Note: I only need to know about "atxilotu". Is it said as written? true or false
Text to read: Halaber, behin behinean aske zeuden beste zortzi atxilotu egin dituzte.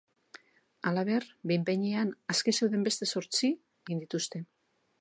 false